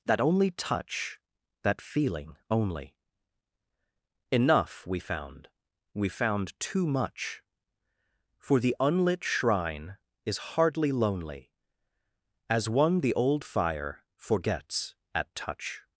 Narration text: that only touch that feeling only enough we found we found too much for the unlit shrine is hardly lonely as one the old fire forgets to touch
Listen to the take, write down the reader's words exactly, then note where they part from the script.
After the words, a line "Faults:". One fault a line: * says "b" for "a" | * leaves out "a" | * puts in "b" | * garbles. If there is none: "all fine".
that only touch that feeling only enough we found we found too much for the unlit shrine is hardly lonely as one the old fire forgets at touch
Faults:
* says "at" for "to"